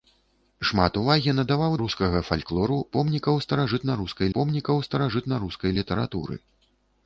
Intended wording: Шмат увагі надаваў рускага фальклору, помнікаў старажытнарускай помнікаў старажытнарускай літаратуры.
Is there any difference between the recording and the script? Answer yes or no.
no